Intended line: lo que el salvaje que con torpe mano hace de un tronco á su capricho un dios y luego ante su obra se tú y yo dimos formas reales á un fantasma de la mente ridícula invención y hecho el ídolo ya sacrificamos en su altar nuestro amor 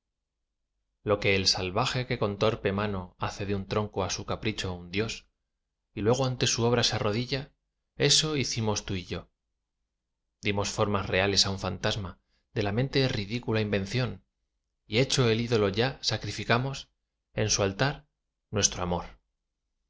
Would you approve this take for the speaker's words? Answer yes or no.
no